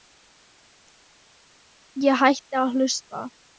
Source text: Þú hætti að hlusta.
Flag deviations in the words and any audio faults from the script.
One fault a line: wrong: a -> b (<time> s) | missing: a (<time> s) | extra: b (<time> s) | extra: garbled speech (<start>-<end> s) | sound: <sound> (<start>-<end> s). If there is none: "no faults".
wrong: Þú -> Ég (2.0 s)